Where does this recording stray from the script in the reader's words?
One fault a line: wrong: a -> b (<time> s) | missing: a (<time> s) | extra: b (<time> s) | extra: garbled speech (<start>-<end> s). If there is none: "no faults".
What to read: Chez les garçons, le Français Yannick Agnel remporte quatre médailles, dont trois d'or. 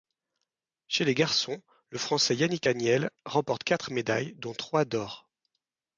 no faults